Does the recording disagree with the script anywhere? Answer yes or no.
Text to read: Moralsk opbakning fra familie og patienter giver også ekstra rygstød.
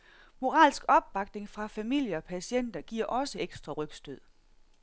no